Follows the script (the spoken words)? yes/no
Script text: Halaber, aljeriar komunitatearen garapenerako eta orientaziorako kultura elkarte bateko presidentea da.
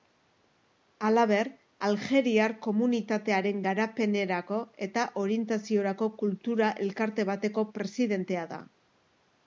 yes